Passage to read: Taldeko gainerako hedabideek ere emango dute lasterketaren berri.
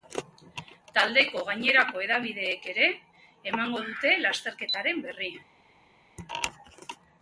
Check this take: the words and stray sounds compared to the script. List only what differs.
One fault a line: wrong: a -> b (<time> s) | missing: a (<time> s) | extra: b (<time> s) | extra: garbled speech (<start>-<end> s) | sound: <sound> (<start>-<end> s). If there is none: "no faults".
no faults